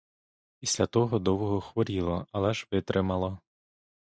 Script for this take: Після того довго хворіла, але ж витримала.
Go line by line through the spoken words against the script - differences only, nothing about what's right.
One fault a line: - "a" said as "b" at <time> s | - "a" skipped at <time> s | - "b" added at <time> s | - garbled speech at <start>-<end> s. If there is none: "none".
none